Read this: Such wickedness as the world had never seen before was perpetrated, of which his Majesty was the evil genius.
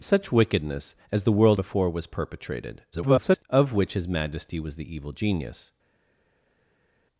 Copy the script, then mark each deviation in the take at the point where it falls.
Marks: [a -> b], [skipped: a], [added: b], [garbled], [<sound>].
Such wickedness as the world [skipped: had never seen] before was perpetrated, [garbled] of which his Majesty was the evil genius.